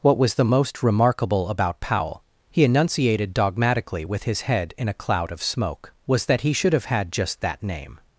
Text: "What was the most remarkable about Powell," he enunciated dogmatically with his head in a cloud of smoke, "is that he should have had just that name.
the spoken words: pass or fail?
fail